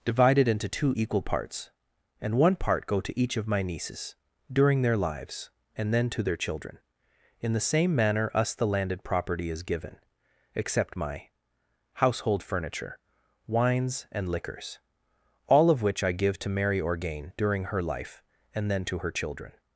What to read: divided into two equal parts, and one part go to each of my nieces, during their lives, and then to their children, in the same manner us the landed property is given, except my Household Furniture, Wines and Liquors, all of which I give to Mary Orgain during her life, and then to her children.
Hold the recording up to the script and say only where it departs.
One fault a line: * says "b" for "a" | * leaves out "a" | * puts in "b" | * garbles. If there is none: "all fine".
all fine